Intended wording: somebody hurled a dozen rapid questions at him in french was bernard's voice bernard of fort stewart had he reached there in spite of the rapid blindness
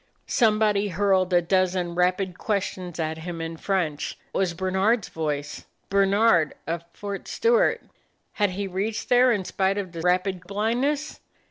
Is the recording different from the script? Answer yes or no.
no